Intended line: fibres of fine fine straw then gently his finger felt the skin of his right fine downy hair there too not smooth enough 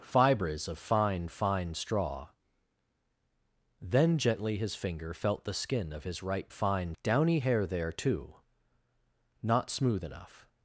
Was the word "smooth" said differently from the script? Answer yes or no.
no